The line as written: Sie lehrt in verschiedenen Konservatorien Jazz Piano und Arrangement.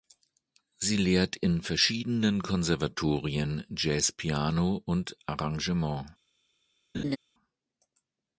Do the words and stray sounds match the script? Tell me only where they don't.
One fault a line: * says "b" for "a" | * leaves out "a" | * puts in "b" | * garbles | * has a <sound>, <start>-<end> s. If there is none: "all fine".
* has a laugh, 6.9-7.2 s